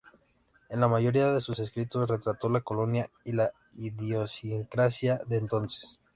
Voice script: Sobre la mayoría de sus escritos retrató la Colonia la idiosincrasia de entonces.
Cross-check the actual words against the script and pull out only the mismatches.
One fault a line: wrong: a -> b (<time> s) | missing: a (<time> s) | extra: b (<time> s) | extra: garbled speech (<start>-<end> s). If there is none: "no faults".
wrong: Sobre -> En (0.7 s)
extra: y (3.2 s)